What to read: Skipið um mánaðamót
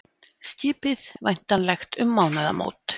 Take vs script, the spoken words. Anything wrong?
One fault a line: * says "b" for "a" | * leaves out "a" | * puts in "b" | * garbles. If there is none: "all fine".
* puts in "væntanlegt"